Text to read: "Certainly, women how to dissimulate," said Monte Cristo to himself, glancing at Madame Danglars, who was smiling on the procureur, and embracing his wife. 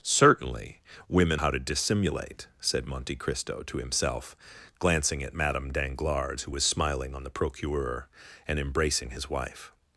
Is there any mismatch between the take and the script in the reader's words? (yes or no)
no